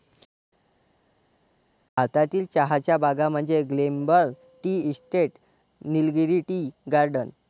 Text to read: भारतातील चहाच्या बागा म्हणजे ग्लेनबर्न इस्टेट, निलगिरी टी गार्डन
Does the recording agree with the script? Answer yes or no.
no